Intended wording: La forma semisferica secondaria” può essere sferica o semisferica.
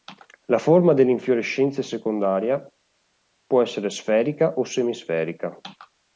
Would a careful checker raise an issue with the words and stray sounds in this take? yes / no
yes